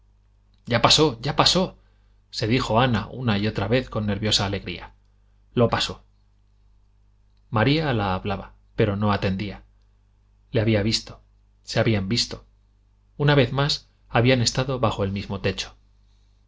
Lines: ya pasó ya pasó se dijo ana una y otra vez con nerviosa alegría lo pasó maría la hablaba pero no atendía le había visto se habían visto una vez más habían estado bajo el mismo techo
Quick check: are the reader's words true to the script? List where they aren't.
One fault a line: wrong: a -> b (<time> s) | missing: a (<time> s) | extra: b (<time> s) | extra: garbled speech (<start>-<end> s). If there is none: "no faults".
no faults